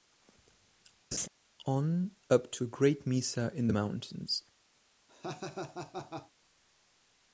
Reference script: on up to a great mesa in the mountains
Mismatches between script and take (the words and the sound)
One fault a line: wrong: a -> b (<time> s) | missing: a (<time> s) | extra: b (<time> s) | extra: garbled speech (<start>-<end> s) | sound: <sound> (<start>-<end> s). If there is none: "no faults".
sound: laugh (1.1-1.3 s)
sound: laugh (5.1-6.3 s)